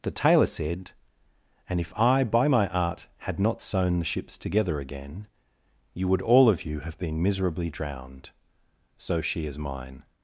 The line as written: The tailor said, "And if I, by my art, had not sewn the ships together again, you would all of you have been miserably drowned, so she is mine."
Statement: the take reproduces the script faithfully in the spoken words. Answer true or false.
true